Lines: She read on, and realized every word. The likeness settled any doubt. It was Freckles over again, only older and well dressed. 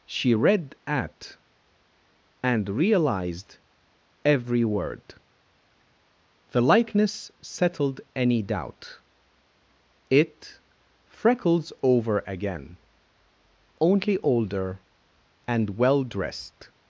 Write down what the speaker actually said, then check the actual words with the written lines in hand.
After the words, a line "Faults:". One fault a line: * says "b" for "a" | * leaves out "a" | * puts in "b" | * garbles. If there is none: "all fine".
She read at, and realized every word. The likeness settled any doubt. It Freckles over again, only older and well dressed.
Faults:
* says "at" for "on"
* leaves out "was"